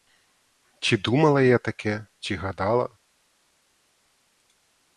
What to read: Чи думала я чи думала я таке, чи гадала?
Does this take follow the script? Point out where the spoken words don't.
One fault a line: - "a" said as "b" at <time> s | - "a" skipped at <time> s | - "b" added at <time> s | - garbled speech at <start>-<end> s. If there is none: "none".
- "чи думала я" skipped at 1.6 s